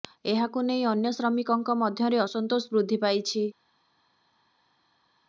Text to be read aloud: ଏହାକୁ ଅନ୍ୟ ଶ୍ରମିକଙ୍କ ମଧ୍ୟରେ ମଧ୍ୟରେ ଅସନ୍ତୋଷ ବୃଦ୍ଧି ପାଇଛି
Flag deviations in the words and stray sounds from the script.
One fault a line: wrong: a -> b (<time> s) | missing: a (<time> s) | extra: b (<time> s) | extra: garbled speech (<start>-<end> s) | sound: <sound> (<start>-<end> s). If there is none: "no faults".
extra: ନେଇ (0.6 s)
missing: ମଧ୍ୟରେ (2.2 s)